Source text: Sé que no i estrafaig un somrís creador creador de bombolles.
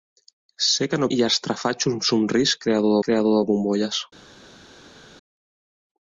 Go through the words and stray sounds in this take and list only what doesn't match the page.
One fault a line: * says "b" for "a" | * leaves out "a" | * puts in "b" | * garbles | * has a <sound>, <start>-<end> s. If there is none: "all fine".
all fine